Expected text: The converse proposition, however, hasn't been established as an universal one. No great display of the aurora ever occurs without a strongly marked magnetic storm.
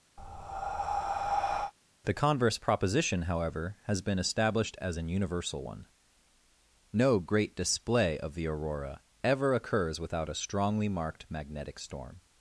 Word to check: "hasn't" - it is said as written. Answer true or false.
false